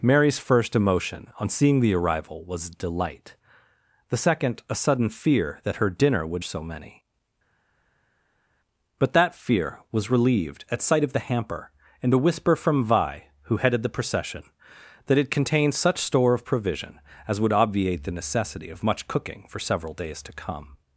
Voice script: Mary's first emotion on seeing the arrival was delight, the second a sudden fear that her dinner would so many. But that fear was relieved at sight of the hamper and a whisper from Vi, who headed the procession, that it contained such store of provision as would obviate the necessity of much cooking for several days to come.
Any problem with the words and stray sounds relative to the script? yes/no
no